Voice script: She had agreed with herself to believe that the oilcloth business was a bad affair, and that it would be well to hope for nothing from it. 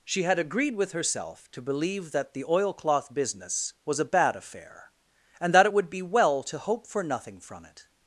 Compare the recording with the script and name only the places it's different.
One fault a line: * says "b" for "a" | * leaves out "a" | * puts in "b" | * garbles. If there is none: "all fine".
all fine